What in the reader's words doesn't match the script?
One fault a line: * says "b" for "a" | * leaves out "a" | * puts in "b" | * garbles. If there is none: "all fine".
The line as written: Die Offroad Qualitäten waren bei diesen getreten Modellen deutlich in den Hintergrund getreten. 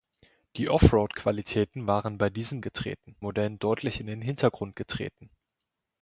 all fine